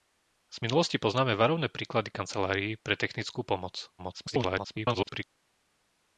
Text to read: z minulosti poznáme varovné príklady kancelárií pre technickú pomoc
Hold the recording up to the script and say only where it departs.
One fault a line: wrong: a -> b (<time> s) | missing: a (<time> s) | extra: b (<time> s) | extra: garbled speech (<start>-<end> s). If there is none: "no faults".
extra: garbled speech (4.0-5.2 s)